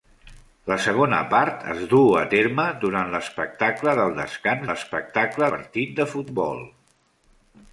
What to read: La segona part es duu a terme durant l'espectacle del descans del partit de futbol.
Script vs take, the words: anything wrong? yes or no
yes